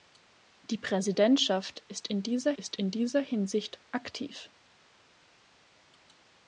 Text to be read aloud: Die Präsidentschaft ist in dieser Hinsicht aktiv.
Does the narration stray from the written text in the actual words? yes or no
yes